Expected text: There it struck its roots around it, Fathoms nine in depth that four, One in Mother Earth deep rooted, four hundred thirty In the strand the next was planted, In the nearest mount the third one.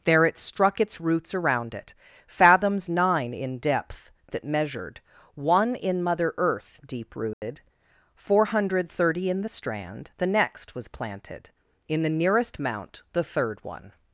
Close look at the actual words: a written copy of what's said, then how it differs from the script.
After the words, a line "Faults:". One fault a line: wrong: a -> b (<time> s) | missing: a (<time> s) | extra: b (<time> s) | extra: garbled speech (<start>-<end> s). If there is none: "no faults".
There it struck its roots around it, Fathoms nine in depth that measured, One in Mother Earth deep rooted, four hundred thirty In the strand the next was planted, In the nearest mount the third one.
Faults:
wrong: four -> measured (4.4 s)